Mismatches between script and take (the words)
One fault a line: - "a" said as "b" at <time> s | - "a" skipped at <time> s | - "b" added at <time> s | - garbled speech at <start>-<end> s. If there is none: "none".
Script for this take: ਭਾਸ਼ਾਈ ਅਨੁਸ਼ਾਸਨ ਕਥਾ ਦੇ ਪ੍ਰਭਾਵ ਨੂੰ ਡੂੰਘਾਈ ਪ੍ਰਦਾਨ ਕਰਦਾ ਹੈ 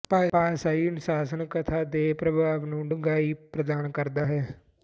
none